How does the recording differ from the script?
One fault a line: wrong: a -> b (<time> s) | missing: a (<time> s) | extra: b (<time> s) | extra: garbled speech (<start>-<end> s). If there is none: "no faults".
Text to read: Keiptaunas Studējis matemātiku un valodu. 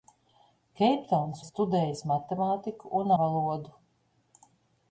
no faults